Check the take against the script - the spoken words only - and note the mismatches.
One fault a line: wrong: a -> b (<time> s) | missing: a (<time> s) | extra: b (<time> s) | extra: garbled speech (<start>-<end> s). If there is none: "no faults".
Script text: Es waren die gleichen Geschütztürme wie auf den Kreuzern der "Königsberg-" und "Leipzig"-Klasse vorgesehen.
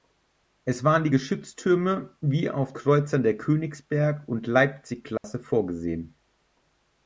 missing: gleichen (1.1 s)
missing: den (2.7 s)